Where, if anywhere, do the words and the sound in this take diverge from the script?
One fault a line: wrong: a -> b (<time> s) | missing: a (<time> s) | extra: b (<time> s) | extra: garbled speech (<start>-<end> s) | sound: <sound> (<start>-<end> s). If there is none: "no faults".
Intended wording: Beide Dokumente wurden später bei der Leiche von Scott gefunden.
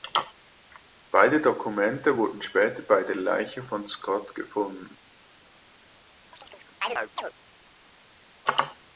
sound: chirp (6.3-7.3 s)